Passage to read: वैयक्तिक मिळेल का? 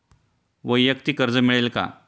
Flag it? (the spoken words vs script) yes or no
yes